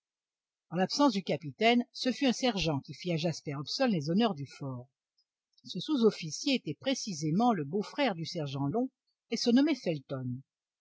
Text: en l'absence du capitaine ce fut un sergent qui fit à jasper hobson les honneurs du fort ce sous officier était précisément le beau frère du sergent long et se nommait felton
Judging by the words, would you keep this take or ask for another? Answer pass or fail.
pass